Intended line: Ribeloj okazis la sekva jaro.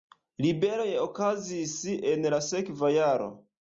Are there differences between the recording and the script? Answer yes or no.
yes